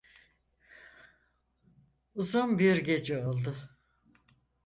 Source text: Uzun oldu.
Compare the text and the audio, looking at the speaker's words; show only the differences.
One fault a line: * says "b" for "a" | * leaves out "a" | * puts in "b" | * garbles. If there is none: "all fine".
* puts in "bir gece"